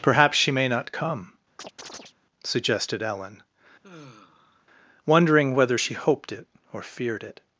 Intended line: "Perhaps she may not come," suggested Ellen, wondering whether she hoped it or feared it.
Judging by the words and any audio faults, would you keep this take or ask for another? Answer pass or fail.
fail